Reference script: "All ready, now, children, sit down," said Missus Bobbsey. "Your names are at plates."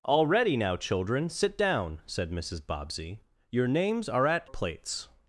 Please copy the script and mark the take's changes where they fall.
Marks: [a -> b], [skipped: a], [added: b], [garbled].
"All ready, now, children, sit down," said Missus Bobbsey. "Your names are at plates."